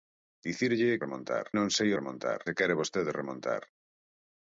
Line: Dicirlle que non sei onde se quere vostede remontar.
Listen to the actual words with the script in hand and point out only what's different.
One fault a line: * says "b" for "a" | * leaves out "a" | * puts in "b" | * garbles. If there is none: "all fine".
* says "remontar" for "que"
* says "remontar" for "onde"